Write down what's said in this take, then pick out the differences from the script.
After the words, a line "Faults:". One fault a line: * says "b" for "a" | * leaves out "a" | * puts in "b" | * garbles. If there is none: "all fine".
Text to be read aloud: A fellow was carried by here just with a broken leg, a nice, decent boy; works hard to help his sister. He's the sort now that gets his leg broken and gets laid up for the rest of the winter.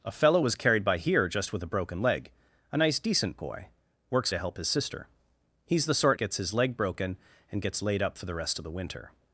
A fellow was carried by here just with a broken leg, a nice, decent boy; works to help his sister. He's the sort gets his leg broken and gets laid up for the rest of the winter.
Faults:
* leaves out "hard"
* leaves out "now that"